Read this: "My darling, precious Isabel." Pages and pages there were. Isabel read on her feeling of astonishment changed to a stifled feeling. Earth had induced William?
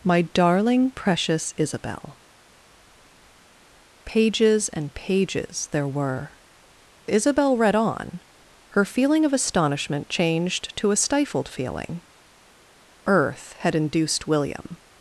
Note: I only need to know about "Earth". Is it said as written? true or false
true